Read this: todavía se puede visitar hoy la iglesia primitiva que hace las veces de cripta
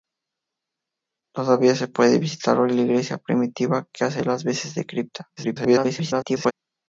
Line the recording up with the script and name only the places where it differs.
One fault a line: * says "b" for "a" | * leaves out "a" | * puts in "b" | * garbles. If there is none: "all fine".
* garbles